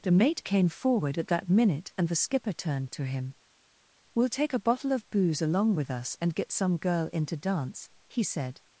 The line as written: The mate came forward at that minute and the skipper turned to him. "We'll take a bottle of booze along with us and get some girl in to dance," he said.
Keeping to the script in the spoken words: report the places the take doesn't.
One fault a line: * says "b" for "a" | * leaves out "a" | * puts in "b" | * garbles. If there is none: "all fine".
all fine